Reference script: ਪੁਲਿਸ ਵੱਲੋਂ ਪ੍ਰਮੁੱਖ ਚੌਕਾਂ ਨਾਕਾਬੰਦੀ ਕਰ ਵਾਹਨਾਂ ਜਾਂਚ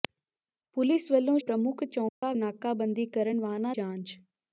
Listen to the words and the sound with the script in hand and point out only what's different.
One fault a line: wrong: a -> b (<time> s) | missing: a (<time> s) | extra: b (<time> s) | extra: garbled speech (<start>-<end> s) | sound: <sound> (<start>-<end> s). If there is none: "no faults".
sound: dropout (2.1-2.2 s)